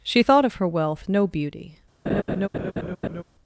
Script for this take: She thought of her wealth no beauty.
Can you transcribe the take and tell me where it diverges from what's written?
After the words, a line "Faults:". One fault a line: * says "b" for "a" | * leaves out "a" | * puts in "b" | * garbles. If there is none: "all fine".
She thought of her wealth no beauty.
Faults:
all fine